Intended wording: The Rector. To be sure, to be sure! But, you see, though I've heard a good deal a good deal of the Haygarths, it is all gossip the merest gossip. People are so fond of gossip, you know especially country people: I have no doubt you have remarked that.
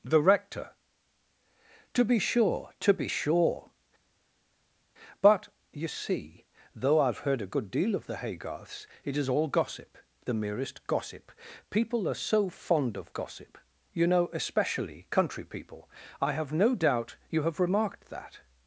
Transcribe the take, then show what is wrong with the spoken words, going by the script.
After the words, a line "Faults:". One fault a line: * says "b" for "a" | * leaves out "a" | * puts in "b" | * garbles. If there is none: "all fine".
The Rector. To be sure, to be sure! But, you see, though I've heard a good deal of the Haygarths, it is all gossip the merest gossip. People are so fond of gossip, you know especially country people: I have no doubt you have remarked that.
Faults:
* leaves out "a good deal"